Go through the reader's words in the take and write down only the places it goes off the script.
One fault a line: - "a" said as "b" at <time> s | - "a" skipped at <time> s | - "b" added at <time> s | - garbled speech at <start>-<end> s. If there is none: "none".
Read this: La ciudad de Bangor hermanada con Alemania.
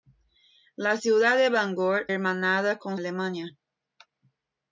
none